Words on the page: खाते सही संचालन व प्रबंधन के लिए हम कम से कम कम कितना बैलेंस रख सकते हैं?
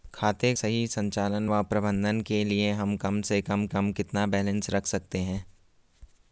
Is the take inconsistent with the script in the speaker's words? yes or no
no